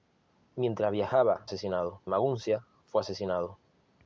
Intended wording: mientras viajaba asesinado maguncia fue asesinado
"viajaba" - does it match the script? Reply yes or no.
yes